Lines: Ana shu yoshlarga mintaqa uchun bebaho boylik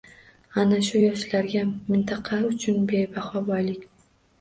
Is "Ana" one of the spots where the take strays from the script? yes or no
no